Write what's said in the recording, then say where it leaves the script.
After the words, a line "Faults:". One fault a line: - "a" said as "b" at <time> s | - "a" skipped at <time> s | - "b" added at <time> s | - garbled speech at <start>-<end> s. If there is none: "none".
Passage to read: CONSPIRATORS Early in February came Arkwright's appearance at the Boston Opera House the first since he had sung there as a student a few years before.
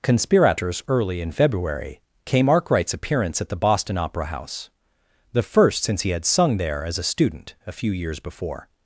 CONSPIRATORS Early in February came Arkwright's appearance at the Boston Opera House the first since he had sung there as a student a few years before.
Faults:
none